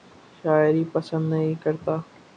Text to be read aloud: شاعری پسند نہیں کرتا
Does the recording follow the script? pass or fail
pass